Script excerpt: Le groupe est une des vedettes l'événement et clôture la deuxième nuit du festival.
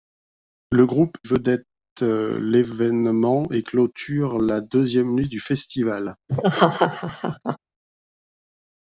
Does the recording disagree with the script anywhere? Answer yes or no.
yes